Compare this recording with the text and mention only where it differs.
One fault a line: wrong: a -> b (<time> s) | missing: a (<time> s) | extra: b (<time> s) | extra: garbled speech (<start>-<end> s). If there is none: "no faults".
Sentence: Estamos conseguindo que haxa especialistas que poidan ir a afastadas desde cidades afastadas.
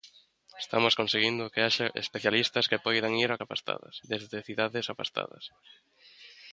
no faults